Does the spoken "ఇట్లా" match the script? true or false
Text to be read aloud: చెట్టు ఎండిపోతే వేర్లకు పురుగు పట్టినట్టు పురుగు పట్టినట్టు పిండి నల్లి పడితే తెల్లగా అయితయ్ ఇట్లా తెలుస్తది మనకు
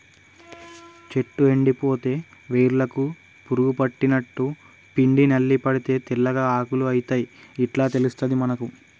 true